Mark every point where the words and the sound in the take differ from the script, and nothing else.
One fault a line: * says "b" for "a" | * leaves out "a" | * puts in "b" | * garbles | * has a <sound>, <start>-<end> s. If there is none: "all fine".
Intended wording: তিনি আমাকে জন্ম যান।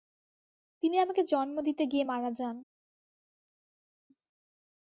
* puts in "দিতে গিয়ে মারা"